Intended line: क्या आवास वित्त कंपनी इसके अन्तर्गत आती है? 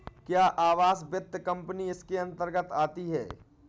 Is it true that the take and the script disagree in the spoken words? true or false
false